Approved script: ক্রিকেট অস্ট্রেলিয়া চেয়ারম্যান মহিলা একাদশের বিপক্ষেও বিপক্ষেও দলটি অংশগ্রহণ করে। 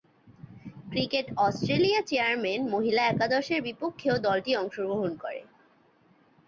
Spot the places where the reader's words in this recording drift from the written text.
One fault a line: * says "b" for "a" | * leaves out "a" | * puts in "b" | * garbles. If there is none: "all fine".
* leaves out "বিপক্ষেও"